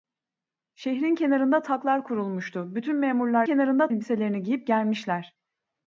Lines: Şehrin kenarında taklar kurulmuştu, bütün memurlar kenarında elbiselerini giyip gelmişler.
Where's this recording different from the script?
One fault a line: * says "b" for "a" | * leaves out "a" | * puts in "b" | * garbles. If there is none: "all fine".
all fine